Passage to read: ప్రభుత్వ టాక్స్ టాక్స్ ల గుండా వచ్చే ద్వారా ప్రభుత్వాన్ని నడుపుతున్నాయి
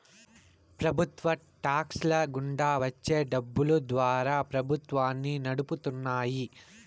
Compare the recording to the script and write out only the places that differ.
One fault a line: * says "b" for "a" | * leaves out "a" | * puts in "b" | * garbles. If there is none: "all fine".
* leaves out "టాక్స్"
* puts in "డబ్బులు"